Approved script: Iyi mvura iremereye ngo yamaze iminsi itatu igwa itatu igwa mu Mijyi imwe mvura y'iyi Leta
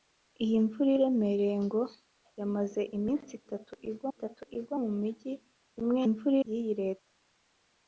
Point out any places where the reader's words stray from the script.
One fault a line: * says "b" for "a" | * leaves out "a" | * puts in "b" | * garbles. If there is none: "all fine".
all fine